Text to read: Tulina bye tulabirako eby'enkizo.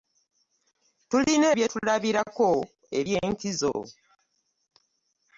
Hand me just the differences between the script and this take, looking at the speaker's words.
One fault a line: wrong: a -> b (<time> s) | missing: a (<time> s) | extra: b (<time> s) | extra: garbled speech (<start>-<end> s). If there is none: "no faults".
no faults